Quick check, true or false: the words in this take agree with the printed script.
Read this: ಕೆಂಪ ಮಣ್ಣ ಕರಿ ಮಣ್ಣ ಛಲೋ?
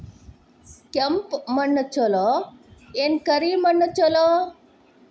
false